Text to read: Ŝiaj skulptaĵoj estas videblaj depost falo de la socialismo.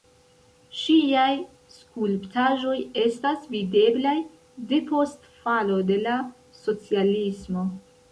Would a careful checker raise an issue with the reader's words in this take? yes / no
no